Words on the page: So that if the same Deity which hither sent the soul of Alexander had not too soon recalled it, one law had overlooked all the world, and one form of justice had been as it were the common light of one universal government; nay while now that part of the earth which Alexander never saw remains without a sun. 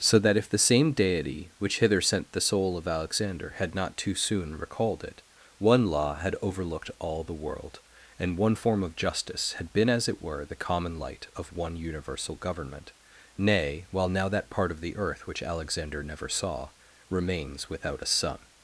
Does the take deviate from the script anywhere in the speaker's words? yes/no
no